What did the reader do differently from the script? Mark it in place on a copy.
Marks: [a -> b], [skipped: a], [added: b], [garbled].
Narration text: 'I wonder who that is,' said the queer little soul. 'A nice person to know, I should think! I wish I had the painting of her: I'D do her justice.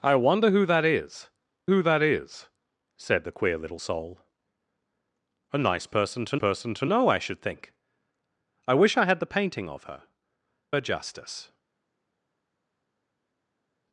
'I wonder who that is,' [added: who that is] said the queer little soul. 'A nice person to [added: person to] know, I should think! I wish I had the painting of her: [skipped: I'D do] her justice.